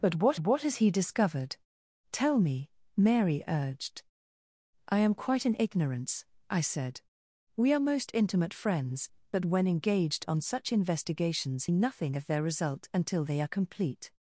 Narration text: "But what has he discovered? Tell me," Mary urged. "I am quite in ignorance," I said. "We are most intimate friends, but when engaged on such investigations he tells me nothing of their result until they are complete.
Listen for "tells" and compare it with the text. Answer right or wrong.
wrong